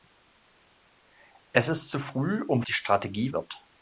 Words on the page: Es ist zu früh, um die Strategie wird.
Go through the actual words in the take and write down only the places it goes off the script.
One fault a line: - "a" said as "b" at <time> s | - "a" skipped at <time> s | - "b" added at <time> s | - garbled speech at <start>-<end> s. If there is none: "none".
none